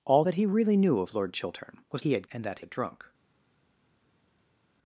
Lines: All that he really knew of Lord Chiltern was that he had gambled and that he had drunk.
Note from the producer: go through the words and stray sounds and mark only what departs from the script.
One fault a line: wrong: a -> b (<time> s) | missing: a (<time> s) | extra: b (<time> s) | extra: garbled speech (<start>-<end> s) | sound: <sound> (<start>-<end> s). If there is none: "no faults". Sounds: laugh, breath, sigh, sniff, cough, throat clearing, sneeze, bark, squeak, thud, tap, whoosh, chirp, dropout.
missing: that (2.0 s)
missing: gambled (2.3 s)
missing: he (2.6 s)